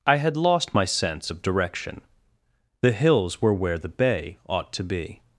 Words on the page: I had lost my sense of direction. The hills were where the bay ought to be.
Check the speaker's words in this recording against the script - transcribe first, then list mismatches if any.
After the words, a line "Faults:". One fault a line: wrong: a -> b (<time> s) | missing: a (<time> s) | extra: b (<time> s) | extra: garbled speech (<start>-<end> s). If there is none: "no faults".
I had lost my sense of direction. The hills were where the bay ought to be.
Faults:
no faults